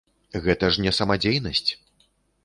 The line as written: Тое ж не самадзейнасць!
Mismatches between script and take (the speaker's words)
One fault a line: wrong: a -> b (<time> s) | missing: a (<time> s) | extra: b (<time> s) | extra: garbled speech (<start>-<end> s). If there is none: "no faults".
wrong: Тое -> Гэта (0.5 s)